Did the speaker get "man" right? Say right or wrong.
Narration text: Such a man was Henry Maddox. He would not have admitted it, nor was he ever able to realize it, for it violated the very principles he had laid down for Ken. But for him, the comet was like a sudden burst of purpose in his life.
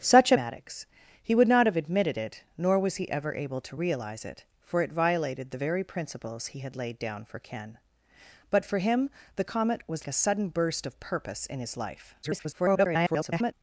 wrong